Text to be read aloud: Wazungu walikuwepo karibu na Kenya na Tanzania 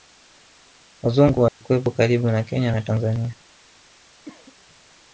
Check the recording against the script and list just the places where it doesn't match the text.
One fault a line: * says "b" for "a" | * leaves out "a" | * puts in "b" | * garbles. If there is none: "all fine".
all fine